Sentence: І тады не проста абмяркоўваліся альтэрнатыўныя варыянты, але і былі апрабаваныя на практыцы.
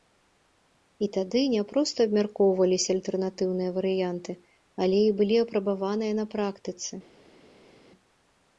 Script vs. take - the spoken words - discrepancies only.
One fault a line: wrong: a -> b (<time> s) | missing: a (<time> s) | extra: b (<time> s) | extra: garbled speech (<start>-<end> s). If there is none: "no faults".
no faults